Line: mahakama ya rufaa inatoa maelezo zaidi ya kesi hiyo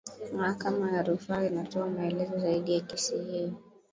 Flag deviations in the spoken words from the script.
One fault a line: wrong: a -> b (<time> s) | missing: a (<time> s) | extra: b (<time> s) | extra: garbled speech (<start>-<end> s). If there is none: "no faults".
no faults